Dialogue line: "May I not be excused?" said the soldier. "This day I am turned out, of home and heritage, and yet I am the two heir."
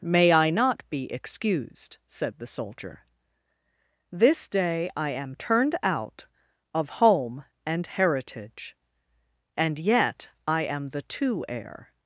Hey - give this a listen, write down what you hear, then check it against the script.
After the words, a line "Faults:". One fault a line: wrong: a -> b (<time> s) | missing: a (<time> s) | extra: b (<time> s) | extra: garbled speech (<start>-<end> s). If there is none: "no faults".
"May I not be excused?" said the soldier. "This day I am turned out, of home and heritage, and yet I am the two heir."
Faults:
no faults